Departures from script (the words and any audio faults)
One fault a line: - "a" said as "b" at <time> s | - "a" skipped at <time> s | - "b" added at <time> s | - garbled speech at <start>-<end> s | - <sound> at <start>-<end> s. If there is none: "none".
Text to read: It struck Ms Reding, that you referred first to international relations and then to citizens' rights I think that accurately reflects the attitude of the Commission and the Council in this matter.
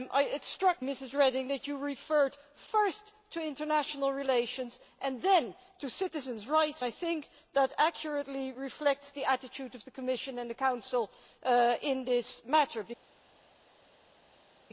none